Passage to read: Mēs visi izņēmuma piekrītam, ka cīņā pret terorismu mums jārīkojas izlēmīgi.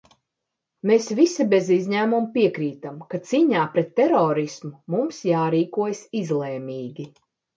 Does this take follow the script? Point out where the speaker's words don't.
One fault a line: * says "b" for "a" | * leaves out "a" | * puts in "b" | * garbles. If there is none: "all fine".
* puts in "bez"